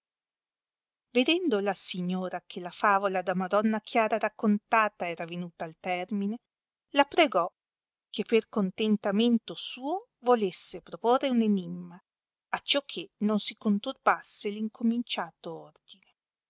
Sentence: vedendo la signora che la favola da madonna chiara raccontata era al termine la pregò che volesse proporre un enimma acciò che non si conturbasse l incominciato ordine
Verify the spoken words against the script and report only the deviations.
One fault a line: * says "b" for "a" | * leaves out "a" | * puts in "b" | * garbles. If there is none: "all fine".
* puts in "venuta"
* puts in "per contentamento suo"